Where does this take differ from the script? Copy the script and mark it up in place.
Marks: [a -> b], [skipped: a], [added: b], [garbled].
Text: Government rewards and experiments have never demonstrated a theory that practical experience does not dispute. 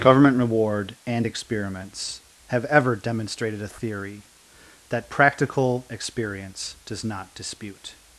Government [rewards -> reward] and experiments have [never -> ever] demonstrated a theory that practical experience does not dispute.